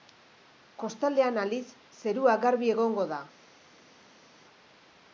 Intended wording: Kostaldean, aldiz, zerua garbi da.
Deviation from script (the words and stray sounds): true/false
true